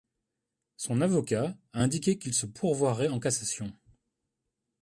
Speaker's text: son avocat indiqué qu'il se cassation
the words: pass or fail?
fail